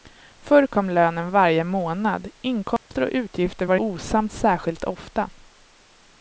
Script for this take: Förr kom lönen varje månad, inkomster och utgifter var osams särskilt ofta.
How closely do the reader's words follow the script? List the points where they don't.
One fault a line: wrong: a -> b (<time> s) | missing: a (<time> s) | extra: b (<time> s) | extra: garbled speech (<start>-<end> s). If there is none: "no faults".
no faults